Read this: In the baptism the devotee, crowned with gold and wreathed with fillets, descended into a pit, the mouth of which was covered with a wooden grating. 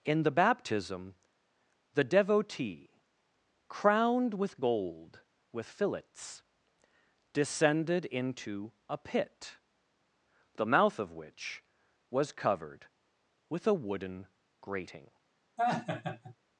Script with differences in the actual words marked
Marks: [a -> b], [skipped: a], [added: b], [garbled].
In the baptism the devotee, crowned with gold [skipped: and wreathed] with fillets, descended into a pit, the mouth of which was covered with a wooden grating.